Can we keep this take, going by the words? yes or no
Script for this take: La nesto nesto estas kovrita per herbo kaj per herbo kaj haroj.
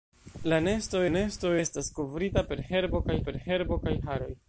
yes